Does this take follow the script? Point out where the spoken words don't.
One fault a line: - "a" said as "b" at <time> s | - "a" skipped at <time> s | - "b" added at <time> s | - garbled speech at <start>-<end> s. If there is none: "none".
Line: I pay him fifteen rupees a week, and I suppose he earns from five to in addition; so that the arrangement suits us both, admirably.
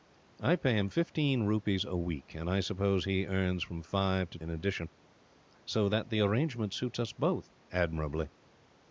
none